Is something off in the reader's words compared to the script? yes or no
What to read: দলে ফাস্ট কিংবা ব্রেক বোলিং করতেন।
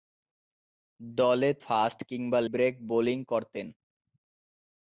no